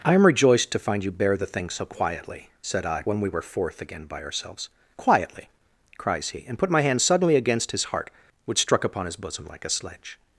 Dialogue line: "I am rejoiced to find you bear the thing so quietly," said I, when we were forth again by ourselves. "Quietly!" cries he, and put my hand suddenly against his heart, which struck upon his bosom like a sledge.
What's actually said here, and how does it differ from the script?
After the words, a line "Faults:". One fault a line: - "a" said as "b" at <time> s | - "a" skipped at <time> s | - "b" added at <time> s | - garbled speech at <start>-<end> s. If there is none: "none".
"I am rejoiced to find you bear the thing so quietly," said I, when we were forth again by ourselves. "Quietly!" cries he, and put my hand suddenly against his heart, which struck upon his bosom like a sledge.
Faults:
none